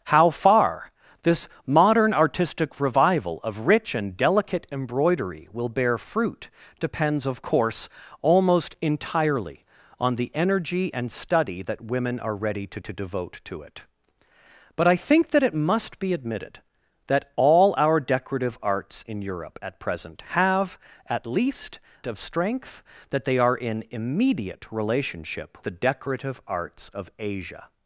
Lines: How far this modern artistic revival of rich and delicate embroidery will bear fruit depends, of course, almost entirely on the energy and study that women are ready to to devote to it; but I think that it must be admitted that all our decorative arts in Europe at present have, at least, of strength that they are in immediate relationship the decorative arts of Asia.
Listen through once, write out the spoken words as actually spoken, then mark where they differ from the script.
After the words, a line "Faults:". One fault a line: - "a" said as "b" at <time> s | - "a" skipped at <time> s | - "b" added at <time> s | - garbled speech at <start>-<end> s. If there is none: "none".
How far this modern artistic revival of rich and delicate embroidery will bear fruit depends, of course, almost entirely on the energy and study that women are ready to to devote to it; but I think that it must be admitted that all our decorative arts in Europe at present have, at least, of strength that they are in immediate relationship the decorative arts of Asia.
Faults:
none